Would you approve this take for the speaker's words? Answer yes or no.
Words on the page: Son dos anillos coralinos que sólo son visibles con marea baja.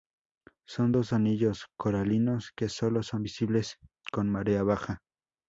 yes